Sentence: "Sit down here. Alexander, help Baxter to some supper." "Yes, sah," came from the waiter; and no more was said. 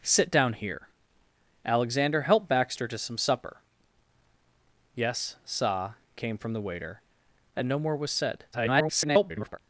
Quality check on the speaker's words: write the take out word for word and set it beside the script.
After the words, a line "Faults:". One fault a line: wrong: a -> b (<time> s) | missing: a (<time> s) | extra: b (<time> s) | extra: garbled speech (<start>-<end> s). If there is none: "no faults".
"Sit down here. Alexander, help Baxter to some supper." "Yes, sah," came from the waiter; and no more was said. [garbled]
Faults:
extra: garbled speech (8.5-9.6 s)